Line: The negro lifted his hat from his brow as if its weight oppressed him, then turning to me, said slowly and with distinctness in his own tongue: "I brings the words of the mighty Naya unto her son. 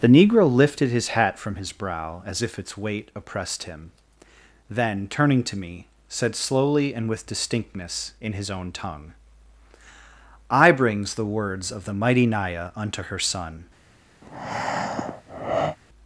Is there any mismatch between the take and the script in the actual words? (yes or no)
no